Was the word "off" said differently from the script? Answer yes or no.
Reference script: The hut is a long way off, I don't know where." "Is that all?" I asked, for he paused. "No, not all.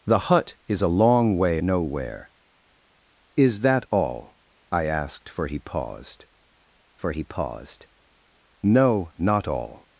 yes